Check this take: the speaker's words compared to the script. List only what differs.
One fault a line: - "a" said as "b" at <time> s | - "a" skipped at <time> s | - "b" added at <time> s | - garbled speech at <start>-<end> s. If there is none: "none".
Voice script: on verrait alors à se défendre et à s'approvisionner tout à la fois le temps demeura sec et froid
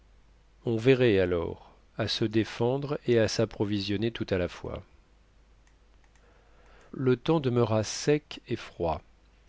none